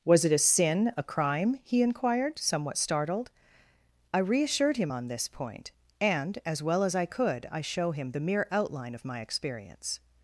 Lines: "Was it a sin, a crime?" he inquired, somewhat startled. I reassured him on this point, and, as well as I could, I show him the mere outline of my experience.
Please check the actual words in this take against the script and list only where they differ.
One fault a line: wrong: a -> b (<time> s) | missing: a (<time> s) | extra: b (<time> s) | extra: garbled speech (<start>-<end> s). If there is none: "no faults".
no faults